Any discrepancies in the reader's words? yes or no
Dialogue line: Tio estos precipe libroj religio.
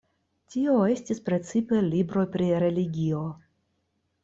yes